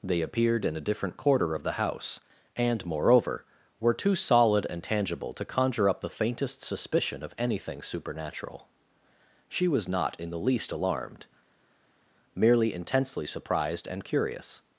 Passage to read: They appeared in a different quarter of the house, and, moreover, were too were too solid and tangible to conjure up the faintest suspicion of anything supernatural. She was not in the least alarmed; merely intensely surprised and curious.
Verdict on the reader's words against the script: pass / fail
fail